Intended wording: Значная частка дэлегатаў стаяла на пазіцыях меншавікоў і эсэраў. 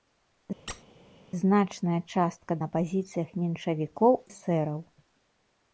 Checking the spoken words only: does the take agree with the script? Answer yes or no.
no